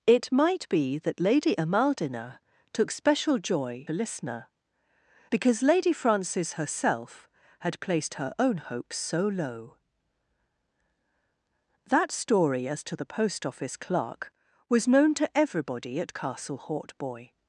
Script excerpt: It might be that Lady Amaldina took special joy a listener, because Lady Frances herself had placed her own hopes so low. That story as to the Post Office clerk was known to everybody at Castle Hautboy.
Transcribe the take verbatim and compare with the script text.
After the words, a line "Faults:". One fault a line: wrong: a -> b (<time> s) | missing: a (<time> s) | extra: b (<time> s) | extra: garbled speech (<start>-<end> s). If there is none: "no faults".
It might be that Lady Amaldina took special joy a listener, because Lady Frances herself had placed her own hopes so low. That story as to the Post Office clerk was known to everybody at Castle Hautboy.
Faults:
no faults